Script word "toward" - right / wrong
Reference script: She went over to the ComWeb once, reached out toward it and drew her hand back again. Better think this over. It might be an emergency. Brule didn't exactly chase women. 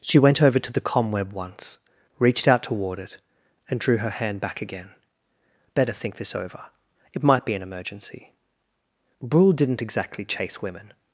right